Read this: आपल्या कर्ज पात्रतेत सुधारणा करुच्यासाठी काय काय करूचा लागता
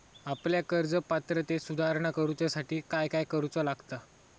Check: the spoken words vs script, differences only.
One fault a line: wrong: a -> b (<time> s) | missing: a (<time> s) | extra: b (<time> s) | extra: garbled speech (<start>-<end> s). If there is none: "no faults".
no faults